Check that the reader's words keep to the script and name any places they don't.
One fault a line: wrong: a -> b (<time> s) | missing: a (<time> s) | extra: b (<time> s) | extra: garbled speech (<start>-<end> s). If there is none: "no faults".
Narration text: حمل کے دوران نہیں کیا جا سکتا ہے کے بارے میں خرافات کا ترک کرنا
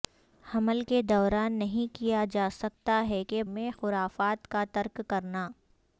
missing: بارے (3.4 s)